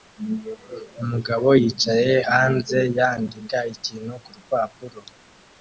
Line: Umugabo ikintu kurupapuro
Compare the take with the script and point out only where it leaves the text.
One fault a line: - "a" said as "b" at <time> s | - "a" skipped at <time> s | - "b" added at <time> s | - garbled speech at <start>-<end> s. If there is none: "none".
- "yicaye hanze yandika" added at 1.6 s